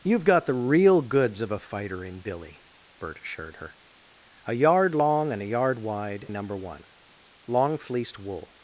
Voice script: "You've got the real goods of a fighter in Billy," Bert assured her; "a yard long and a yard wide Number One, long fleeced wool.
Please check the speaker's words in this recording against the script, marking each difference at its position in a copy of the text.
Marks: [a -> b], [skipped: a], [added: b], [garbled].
"You've got the real goods of a fighter in Billy," Bert assured her; "a yard long and a yard wide Number One, long fleeced wool.